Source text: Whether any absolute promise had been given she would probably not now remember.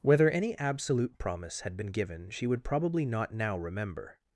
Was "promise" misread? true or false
false